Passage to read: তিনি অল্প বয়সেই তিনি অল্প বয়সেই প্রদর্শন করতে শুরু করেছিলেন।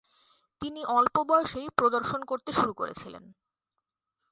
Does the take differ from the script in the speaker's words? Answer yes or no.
yes